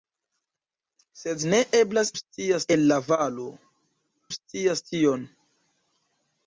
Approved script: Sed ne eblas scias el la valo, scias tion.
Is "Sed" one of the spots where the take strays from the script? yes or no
no